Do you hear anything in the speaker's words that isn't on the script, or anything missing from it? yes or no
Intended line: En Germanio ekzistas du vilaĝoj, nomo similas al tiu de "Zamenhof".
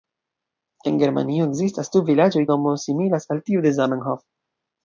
no